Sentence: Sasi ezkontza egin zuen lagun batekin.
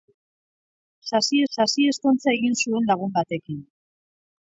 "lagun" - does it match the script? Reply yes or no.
yes